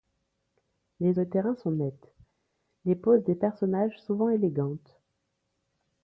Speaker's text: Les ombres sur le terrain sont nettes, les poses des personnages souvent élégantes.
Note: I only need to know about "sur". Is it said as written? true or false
false